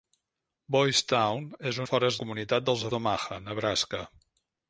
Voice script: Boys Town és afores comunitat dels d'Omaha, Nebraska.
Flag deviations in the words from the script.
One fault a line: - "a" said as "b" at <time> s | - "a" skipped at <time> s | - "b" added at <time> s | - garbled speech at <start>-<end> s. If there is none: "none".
none